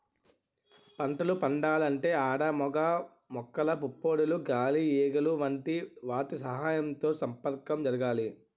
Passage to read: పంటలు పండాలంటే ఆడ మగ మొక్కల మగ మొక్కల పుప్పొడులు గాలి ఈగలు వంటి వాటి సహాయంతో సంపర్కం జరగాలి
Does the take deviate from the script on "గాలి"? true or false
false